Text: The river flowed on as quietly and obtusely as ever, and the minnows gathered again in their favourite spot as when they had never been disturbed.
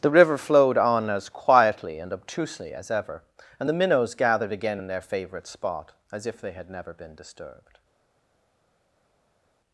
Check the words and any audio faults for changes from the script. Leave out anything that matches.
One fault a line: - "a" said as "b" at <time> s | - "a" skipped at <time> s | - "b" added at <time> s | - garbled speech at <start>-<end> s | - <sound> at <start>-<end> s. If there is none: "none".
- "when" said as "if" at 6.3 s